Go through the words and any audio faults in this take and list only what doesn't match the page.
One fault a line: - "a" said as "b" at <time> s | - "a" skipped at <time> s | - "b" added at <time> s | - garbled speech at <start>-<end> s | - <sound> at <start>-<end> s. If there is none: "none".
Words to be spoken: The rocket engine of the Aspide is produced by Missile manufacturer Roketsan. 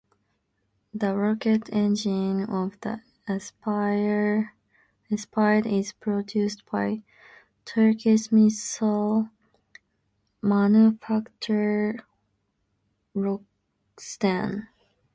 - "Turkish" added at 7.7 s